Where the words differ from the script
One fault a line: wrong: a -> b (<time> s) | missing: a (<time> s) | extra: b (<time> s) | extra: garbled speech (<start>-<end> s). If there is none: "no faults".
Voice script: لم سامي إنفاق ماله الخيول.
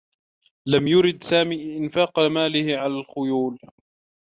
extra: يرد (0.9 s)
extra: على (2.8 s)